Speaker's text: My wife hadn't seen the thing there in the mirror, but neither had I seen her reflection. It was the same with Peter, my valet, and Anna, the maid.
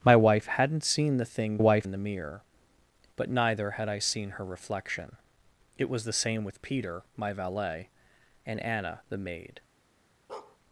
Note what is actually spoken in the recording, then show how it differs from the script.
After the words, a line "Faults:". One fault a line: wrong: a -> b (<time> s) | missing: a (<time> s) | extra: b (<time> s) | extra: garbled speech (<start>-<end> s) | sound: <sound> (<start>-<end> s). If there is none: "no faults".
My wife hadn't seen the thing wife in the mirror, but neither had I seen her reflection. It was the same with Peter, my valet, and Anna, the maid.
Faults:
wrong: there -> wife (1.6 s)
sound: bark (10.3-10.6 s)